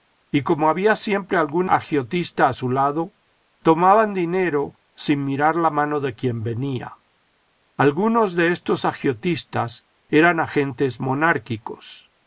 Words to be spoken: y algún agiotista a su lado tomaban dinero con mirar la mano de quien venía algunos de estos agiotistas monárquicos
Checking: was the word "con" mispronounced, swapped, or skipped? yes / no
yes